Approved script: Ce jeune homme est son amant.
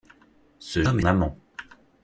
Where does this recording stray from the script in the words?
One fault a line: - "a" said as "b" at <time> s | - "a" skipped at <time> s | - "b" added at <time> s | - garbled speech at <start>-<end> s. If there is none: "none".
- "jeune" skipped at 0.8 s
- "son" skipped at 1.0 s